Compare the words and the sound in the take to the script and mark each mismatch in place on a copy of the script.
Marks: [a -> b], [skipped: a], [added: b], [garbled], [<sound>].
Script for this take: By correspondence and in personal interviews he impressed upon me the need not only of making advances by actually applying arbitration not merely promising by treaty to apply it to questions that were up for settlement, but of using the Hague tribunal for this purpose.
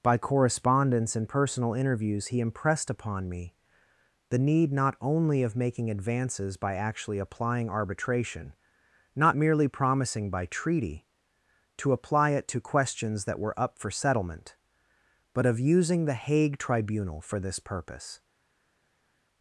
By correspondence and [skipped: in] personal interviews he impressed upon me the need not only of making advances by actually applying arbitration not merely promising by treaty to apply it to questions that were up for settlement, but of using the Hague tribunal for this purpose.